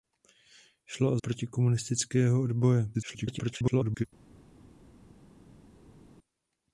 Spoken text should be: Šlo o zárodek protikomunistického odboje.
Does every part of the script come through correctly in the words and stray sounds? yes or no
no